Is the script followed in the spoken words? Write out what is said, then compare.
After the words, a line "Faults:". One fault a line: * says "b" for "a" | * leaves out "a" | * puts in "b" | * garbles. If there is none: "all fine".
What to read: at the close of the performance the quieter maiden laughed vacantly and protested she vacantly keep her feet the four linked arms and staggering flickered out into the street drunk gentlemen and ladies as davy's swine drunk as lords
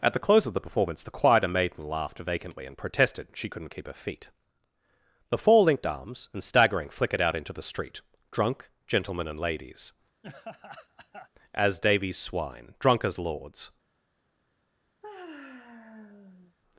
at the close of the performance the quieter maiden laughed vacantly and protested she couldn't keep her feet the four linked arms and staggering flickered out into the street drunk gentlemen and ladies as davy's swine drunk as lords
Faults:
* says "couldn't" for "vacantly"